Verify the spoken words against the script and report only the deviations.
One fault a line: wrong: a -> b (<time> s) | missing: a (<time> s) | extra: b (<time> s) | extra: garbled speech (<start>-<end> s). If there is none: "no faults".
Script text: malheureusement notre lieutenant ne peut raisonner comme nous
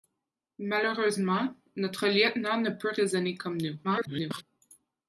extra: garbled speech (3.8-4.4 s)